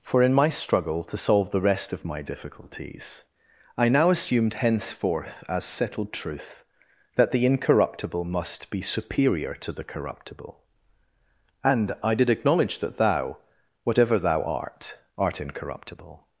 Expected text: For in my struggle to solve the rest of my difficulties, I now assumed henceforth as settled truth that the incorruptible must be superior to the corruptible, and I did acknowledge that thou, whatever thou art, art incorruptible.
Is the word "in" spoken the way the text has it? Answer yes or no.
yes